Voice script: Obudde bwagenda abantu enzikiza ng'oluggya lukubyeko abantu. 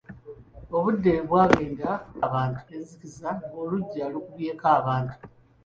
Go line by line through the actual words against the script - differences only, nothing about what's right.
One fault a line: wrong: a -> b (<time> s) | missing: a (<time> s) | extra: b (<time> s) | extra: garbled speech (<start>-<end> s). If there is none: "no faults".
no faults